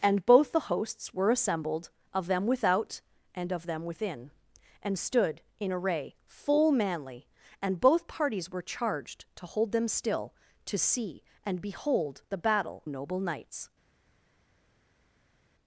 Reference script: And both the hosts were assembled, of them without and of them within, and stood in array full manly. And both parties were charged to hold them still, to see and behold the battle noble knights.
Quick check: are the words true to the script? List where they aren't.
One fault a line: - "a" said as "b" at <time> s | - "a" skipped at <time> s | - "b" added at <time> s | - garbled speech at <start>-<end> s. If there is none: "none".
none